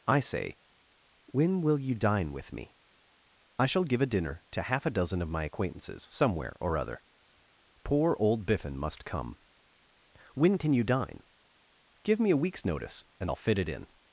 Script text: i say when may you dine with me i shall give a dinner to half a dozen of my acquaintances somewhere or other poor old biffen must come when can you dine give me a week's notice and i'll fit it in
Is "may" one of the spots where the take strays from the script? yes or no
yes